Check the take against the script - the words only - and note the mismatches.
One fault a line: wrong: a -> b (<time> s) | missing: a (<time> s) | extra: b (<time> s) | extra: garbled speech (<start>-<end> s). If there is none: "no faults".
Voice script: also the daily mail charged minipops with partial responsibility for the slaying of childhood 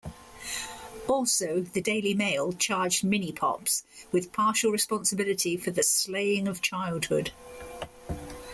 no faults